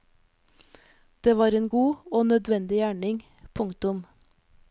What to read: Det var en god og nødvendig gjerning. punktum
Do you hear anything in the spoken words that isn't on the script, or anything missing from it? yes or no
no